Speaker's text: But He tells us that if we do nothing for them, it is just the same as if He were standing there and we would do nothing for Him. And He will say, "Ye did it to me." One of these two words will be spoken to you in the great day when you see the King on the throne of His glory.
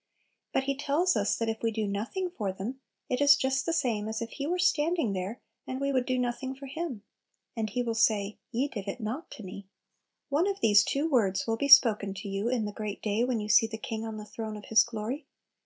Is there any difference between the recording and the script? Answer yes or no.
yes